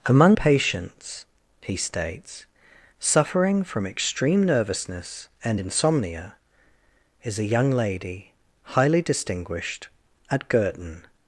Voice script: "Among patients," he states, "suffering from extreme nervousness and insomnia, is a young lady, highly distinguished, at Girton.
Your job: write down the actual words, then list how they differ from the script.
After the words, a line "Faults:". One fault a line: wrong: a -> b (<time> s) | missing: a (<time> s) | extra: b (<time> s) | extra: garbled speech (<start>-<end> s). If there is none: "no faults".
"Among patients," he states, "suffering from extreme nervousness and insomnia, is a young lady, highly distinguished, at Girton.
Faults:
no faults